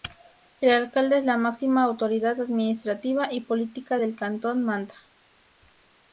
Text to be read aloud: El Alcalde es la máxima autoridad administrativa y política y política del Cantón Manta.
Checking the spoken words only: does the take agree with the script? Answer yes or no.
no